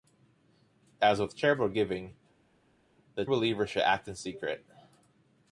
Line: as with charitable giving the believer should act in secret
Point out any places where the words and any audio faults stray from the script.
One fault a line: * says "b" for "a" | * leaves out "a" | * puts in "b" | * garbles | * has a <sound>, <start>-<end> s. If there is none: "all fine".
all fine